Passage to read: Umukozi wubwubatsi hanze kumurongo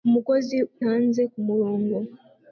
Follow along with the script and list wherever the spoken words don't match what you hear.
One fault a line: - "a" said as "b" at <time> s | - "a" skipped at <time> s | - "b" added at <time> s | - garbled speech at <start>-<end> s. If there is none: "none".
- "wubwubatsi" skipped at 0.6 s